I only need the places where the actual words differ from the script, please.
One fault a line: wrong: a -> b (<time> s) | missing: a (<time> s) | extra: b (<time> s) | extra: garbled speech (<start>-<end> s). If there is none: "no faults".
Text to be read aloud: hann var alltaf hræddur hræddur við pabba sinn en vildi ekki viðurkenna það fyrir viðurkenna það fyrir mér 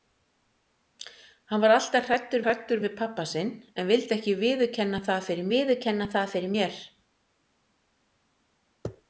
no faults